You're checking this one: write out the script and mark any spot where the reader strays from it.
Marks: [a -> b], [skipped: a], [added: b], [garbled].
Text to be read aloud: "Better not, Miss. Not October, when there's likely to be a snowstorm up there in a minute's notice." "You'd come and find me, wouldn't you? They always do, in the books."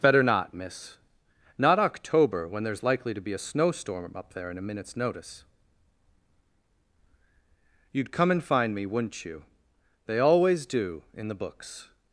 "Better not, Miss. Not October, when there's likely to be a snowstorm up there in a minute's notice." "You'd come and find me, wouldn't you? They always do, in the books."